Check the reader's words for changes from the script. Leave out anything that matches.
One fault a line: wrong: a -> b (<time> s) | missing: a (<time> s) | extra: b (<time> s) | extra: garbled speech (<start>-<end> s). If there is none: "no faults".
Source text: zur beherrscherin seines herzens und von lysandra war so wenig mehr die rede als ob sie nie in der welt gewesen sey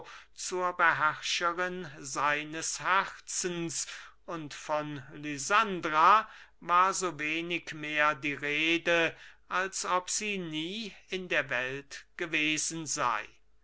no faults